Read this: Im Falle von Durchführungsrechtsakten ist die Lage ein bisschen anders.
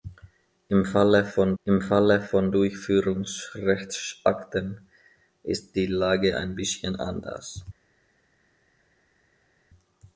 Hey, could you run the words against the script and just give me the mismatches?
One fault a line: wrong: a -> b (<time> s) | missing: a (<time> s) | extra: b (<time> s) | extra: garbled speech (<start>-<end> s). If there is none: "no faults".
extra: im Falle von (1.6 s)